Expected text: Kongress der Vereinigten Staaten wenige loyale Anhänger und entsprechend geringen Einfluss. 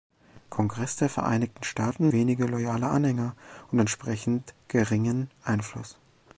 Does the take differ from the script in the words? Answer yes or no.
no